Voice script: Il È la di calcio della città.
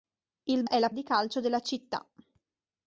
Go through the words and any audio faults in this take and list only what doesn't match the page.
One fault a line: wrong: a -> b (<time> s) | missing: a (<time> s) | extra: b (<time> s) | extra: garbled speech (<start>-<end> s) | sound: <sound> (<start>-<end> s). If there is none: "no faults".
no faults